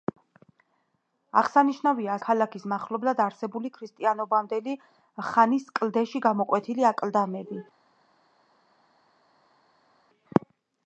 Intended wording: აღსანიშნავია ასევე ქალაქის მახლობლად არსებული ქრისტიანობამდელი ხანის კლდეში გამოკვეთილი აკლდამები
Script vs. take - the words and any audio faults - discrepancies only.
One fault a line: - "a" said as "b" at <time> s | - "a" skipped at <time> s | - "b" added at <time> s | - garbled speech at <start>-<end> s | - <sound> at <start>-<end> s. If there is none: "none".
- "ასევე" skipped at 2.1 s